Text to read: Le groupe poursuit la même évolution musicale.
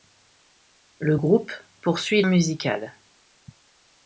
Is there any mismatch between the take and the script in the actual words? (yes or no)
yes